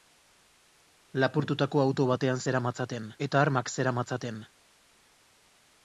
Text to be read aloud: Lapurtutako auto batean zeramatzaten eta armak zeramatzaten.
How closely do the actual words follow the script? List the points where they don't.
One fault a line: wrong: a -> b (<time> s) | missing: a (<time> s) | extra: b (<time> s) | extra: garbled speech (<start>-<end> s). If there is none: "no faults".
no faults